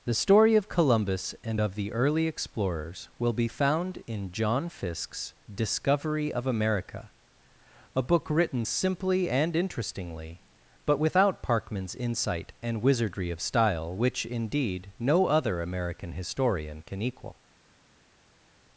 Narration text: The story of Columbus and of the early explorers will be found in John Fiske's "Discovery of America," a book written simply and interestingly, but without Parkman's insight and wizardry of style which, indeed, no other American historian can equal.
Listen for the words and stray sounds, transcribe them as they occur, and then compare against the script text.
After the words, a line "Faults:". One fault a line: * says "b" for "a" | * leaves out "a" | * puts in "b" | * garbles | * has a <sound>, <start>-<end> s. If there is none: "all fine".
The story of Columbus and of the early explorers will be found in John Fiske's "Discovery of America," a book written simply and interestingly, but without Parkman's insight and wizardry of style which, indeed, no other American historian can equal.
Faults:
all fine